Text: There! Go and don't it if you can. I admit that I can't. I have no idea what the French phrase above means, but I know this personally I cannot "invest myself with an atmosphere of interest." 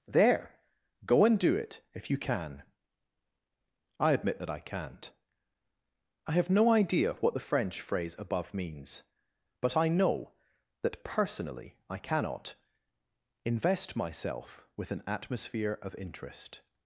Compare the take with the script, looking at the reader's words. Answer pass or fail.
fail